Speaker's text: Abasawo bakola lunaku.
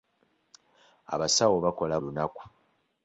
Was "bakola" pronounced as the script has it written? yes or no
yes